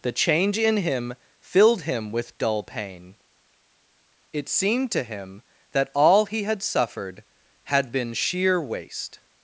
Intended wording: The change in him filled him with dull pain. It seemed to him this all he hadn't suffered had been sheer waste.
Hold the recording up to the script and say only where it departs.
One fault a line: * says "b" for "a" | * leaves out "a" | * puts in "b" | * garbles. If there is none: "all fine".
* says "that" for "this"
* says "had" for "hadn't"